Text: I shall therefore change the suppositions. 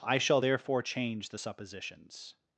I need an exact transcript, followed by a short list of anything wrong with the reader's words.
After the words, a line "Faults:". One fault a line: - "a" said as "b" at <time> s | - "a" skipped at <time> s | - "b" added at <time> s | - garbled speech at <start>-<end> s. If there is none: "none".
I shall therefore change the suppositions.
Faults:
none